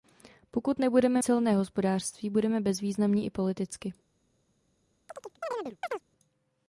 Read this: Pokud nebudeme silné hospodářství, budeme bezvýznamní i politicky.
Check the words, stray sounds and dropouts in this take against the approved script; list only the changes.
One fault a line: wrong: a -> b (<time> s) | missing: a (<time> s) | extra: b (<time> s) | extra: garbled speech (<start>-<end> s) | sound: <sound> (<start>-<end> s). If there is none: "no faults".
sound: chirp (5.1-6.0 s)